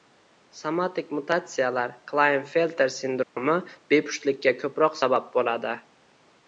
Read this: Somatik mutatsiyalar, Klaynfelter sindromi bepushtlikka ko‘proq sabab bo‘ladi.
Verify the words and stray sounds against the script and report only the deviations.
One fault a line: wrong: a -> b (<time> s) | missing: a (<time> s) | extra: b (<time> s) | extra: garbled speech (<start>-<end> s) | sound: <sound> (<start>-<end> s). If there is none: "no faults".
sound: dropout (3.2-3.4 s)